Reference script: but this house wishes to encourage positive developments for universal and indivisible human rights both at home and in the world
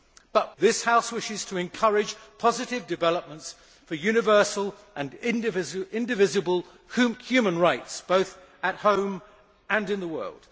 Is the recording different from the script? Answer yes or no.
no